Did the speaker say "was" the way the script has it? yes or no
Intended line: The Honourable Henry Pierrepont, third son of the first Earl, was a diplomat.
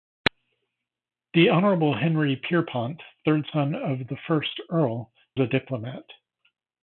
no